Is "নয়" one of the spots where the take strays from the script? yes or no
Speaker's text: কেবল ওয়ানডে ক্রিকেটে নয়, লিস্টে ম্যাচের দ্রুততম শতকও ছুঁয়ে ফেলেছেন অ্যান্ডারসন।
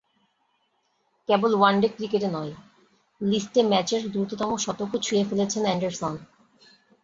no